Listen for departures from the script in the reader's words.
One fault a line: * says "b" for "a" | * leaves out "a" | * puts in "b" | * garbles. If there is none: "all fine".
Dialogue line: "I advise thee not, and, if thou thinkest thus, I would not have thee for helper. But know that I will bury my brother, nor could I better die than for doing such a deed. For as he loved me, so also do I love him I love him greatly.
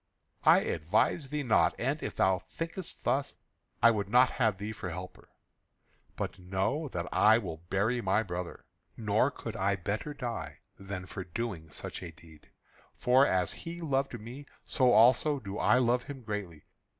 * leaves out "I love him"